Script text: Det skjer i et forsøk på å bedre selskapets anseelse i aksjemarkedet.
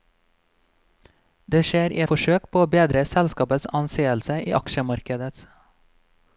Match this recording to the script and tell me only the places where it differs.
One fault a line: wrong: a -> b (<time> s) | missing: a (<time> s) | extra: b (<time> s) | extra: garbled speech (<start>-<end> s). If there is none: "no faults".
missing: et (2.0 s)